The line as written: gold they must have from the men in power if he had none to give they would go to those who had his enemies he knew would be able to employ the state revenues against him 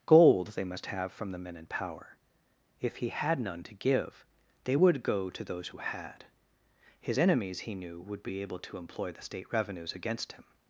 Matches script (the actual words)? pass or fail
pass